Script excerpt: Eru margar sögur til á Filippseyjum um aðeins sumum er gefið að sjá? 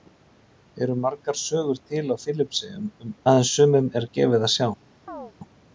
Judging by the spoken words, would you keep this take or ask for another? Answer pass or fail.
pass